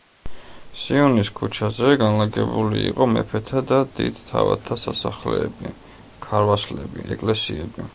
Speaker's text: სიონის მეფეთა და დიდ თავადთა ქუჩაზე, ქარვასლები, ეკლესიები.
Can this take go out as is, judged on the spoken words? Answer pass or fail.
fail